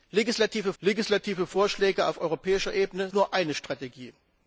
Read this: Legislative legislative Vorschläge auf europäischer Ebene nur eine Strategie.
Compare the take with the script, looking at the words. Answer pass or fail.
pass